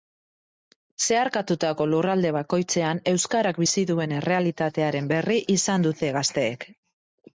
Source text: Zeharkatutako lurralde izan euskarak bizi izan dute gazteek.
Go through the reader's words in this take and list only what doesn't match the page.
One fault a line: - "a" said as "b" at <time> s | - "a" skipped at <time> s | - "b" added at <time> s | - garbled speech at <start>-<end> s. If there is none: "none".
- "izan" said as "bakoitzean" at 2.4 s
- "duen errealitatearen berri" added at 3.9 s